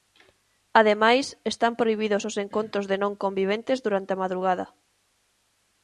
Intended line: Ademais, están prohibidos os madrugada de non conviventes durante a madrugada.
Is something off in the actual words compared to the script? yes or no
yes